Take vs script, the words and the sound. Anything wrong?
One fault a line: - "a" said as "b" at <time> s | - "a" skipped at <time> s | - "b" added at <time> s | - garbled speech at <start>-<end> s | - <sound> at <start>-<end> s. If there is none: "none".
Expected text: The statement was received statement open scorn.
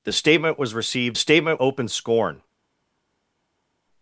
none